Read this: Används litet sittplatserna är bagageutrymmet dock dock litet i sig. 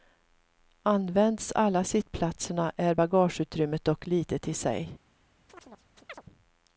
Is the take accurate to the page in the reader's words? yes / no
no